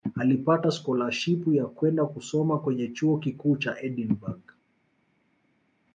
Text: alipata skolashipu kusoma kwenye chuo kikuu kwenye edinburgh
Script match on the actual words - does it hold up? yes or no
no